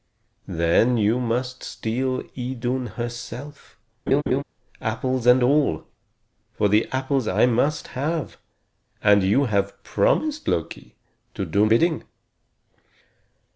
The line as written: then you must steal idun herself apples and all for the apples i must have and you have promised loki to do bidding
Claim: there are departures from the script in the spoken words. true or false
false